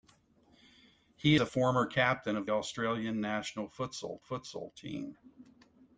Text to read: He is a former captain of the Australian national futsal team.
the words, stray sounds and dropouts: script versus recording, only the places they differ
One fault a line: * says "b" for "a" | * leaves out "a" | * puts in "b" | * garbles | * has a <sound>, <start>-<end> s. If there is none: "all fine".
* leaves out "is"
* leaves out "the"
* puts in "futsal"